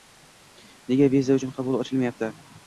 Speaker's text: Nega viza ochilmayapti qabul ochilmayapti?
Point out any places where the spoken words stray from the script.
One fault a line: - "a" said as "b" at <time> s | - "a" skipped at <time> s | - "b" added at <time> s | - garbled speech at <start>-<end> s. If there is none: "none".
- "ochilmayapti" said as "uchun" at 1.4 s